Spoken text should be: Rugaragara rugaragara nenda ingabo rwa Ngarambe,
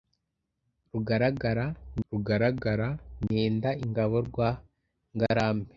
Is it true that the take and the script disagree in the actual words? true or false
false